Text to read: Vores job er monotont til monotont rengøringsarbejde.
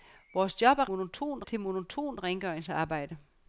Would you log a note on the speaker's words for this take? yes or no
no